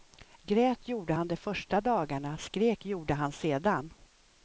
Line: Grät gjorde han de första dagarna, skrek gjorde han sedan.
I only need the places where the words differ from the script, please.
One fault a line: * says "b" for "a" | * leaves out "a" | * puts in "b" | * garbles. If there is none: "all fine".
all fine